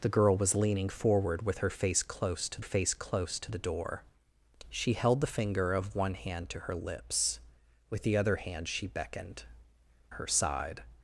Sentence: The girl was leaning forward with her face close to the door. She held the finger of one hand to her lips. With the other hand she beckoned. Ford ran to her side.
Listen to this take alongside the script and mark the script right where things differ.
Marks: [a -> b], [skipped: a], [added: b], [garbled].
The girl was leaning forward with her face close to [added: face close to] the door. She held the finger of one hand to her lips. With the other hand she beckoned. [skipped: Ford ran to] her side.